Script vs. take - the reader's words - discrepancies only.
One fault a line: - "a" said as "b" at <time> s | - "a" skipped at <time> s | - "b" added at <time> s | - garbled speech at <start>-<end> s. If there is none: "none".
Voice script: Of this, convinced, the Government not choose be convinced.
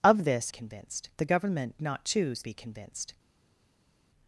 none